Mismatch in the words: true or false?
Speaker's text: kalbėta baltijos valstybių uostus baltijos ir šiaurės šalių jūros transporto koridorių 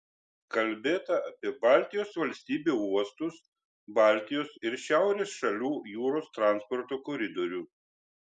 true